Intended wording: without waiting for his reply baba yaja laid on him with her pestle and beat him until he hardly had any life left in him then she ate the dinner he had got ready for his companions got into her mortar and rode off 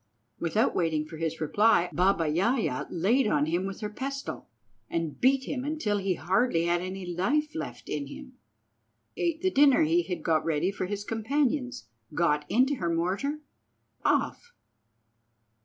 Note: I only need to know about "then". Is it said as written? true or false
false